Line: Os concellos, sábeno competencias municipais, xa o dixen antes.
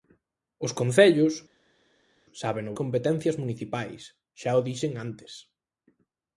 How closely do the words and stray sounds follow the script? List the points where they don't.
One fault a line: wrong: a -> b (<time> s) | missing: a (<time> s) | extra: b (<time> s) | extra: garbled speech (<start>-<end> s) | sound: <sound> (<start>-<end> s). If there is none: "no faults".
no faults